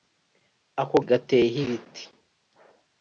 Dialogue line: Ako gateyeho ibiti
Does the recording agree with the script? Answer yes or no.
yes